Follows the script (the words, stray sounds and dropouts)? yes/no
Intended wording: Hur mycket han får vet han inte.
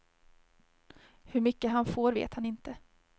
yes